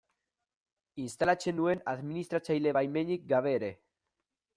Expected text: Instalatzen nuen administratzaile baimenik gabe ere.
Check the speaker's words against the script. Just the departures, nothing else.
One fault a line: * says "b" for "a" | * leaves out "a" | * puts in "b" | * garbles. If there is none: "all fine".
all fine